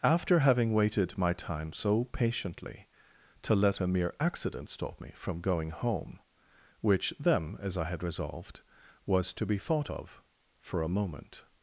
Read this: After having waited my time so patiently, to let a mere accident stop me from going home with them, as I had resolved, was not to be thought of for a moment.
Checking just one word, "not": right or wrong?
wrong